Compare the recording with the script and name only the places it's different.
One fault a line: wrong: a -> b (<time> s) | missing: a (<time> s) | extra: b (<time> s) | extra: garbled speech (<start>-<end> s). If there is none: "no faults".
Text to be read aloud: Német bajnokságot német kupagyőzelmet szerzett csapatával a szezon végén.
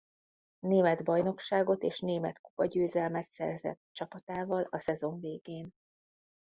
extra: és (1.8 s)